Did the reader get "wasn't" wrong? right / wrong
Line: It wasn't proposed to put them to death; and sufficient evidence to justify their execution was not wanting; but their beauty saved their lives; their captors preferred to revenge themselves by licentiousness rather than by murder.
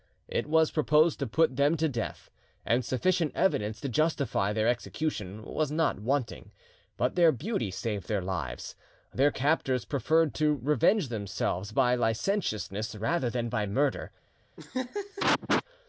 wrong